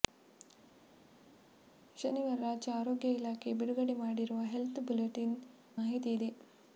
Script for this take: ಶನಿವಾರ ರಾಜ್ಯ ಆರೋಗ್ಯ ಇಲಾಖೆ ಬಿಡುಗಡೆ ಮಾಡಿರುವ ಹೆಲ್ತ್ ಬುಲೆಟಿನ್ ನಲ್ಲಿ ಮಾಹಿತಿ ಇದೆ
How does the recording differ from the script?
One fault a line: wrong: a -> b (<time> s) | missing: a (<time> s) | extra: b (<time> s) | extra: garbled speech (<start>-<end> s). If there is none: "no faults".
missing: ನಲ್ಲಿ (5.4 s)